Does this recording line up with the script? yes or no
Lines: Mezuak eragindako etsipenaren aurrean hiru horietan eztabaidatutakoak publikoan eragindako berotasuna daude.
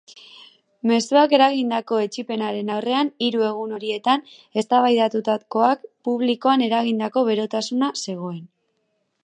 no